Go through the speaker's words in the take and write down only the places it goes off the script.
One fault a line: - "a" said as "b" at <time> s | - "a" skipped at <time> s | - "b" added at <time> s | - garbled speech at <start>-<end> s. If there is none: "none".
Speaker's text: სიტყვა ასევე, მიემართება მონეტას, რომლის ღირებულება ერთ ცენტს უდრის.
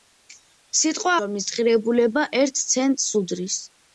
- "ასევე მიემართება მონეტას" skipped at 1.1 s